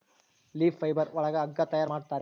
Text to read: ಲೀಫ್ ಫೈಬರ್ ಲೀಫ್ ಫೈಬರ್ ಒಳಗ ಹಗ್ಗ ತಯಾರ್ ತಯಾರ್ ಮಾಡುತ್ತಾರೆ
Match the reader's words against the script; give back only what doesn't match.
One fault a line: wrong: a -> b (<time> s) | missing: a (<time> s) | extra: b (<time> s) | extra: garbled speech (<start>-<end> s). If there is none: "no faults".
missing: ಲೀಫ್ ಫೈಬರ್ (1.1 s)
missing: ತಯಾರ್ (1.9 s)